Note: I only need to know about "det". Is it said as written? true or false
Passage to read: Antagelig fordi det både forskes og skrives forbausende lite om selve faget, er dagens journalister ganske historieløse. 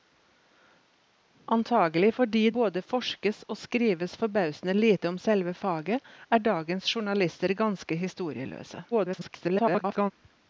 false